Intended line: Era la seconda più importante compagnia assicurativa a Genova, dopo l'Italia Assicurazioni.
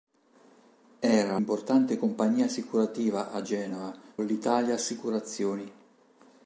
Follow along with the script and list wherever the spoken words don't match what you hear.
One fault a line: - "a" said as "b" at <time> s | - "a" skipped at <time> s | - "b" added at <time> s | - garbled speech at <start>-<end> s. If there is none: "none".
- "la seconda più" skipped at 1.4 s
- "dopo" skipped at 3.9 s